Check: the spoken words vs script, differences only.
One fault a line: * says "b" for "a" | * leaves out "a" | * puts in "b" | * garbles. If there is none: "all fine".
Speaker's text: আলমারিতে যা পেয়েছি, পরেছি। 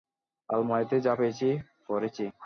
all fine